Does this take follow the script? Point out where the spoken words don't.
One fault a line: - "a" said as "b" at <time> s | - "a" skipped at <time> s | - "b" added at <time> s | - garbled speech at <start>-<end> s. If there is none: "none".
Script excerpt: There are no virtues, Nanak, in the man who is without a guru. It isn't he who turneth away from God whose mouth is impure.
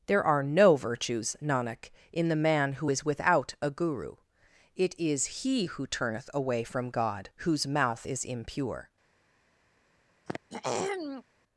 - "isn't" said as "is" at 5.0 s